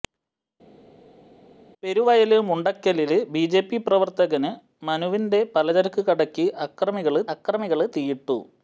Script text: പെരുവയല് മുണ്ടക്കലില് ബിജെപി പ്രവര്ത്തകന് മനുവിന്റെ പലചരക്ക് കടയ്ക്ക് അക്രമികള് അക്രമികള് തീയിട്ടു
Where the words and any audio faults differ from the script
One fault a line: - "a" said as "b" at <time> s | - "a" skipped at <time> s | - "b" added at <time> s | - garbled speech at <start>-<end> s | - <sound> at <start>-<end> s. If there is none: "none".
none